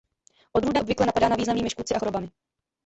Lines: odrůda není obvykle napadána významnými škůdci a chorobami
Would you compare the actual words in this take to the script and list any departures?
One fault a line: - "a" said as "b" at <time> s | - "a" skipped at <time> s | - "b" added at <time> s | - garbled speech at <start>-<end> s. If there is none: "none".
- "není" skipped at 0.8 s